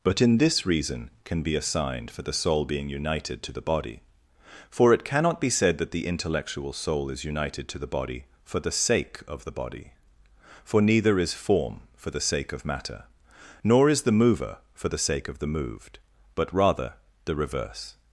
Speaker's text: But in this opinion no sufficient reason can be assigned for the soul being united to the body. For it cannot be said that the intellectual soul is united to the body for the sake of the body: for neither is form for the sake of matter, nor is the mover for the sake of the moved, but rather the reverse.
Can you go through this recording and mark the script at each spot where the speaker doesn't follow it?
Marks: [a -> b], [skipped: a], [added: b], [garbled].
But in this [skipped: opinion no sufficient] reason can be assigned for the soul being united to the body. For it cannot be said that the intellectual soul is united to the body for the sake of the body: for neither is form for the sake of matter, nor is the mover for the sake of the moved, but rather the reverse.